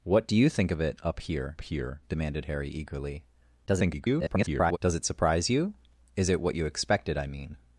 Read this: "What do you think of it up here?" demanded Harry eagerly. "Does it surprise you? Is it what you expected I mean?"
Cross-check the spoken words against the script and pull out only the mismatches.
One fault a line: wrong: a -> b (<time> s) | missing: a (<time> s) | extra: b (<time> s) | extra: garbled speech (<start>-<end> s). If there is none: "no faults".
extra: here (1.6 s)
extra: garbled speech (3.7-4.8 s)